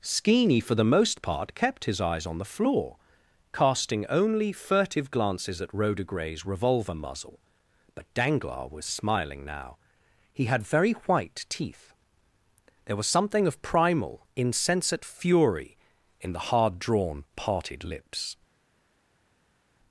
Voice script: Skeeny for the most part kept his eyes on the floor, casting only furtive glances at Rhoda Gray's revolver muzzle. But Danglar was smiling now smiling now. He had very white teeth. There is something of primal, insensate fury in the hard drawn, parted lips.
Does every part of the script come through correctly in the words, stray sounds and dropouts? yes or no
no